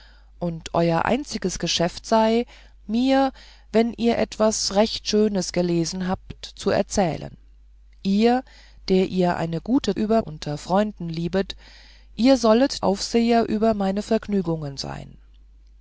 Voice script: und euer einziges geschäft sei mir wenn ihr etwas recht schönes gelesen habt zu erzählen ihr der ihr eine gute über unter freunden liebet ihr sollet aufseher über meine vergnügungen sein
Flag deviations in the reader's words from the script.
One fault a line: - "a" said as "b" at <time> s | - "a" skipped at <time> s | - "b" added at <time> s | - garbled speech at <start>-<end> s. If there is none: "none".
none